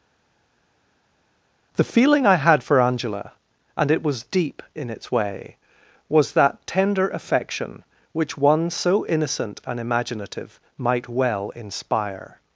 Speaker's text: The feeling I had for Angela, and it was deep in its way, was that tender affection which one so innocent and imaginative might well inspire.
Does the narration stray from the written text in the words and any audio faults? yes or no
no